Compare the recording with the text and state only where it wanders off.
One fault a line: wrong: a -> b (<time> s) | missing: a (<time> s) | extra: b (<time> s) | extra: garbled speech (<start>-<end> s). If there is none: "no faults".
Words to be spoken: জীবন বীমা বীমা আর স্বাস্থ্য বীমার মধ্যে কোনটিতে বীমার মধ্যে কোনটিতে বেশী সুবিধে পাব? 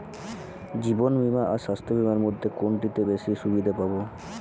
missing: বীমা (1.4 s)
missing: বীমার মধ্যে কোনটিতে (3.0 s)